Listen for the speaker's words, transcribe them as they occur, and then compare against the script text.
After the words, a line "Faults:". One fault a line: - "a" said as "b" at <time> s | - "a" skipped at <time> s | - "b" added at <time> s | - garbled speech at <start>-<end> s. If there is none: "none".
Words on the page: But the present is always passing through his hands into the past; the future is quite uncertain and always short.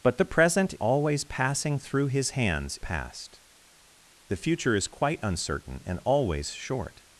But the present always passing through his hands past; the future is quite uncertain and always short.
Faults:
- "is" skipped at 0.7 s
- "into the" skipped at 2.8 s